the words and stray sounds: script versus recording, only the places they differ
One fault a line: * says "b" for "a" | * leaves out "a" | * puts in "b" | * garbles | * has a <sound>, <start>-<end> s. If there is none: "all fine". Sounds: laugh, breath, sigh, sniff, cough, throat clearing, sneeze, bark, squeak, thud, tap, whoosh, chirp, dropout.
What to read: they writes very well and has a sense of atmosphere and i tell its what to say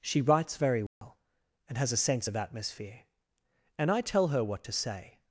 * says "she" for "they"
* has a dropout, 0.9-1.0 s
* says "her" for "its"